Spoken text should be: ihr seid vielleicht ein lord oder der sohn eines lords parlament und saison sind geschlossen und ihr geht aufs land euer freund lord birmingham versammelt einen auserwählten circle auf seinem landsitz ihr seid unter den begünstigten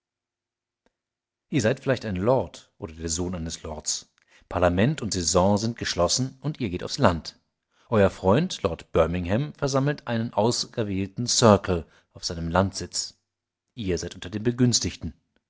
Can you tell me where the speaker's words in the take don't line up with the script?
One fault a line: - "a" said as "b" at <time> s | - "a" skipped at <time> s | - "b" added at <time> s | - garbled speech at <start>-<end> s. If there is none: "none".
none